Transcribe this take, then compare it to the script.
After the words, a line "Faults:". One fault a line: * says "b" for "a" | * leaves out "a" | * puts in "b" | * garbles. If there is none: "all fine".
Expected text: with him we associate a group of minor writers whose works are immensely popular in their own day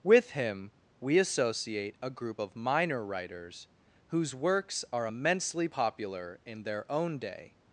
with him we associate a group of minor writers whose works are immensely popular in their own day
Faults:
all fine